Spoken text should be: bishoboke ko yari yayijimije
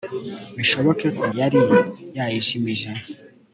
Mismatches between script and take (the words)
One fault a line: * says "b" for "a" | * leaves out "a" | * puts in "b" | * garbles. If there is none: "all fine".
all fine